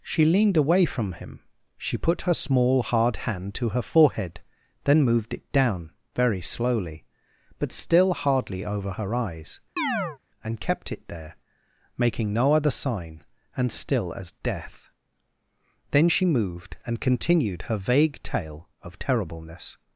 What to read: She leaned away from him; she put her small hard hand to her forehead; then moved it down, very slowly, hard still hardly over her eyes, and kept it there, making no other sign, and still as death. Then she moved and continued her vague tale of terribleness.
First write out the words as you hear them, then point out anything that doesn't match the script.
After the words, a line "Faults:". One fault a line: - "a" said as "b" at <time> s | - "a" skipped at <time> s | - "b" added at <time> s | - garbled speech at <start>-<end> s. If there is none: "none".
She leaned away from him; she put her small hard hand to her forehead; then moved it down, very slowly, but still hardly over her eyes, and kept it there, making no other sign, and still as death. Then she moved and continued her vague tale of terribleness.
Faults:
- "hard" said as "but" at 7.6 s